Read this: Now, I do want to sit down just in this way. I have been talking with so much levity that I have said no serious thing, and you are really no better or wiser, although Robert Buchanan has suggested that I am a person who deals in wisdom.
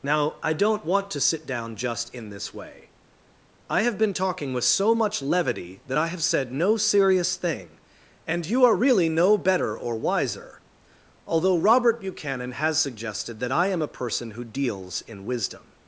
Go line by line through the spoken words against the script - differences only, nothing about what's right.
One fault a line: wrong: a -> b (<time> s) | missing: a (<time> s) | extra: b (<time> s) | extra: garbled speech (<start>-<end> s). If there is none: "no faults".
wrong: do -> don't (0.5 s)